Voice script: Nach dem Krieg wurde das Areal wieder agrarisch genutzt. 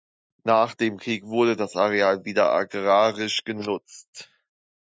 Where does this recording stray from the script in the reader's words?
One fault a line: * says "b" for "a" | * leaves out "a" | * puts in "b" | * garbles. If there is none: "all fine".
all fine